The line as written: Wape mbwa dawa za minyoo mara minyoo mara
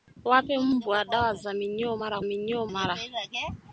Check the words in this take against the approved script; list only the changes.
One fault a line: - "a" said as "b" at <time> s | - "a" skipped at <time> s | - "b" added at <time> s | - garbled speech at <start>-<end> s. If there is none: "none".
none